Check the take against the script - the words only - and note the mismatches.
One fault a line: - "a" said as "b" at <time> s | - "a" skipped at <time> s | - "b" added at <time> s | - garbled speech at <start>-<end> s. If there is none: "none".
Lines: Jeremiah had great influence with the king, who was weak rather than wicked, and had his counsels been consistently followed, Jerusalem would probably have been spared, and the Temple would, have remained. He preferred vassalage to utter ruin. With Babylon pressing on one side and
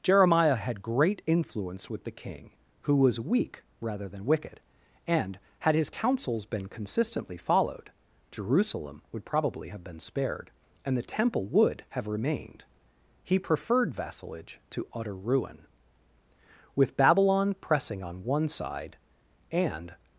none